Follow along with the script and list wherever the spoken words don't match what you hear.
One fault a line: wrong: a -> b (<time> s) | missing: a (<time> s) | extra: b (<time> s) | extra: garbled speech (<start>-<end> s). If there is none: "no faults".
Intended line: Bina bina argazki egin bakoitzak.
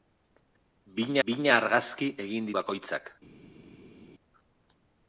no faults